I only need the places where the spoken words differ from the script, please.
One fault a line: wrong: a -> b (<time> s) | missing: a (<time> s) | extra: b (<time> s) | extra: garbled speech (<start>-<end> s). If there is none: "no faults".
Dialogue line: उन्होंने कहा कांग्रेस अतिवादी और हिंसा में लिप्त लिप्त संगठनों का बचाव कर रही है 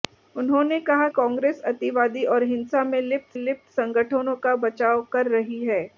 no faults